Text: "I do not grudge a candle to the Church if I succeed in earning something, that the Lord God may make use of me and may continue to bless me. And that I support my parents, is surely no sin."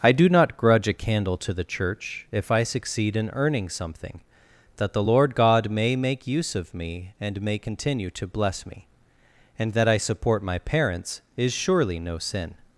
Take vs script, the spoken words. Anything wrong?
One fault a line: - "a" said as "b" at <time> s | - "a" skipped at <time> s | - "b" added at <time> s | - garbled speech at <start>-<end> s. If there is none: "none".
none